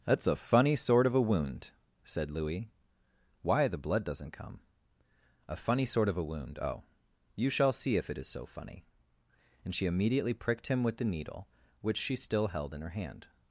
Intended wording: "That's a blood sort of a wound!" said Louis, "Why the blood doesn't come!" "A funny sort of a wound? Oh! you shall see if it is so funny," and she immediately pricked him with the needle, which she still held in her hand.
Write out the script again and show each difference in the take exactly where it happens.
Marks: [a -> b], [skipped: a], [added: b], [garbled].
"That's a [blood -> funny] sort of a wound!" said Louis, "Why the blood doesn't come!" "A funny sort of a wound? Oh! you shall see if it is so funny," and she immediately pricked him with the needle, which she still held in her hand.